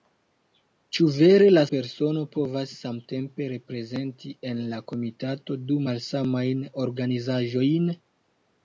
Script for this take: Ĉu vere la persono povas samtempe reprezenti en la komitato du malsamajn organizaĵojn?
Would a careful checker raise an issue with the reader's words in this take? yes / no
no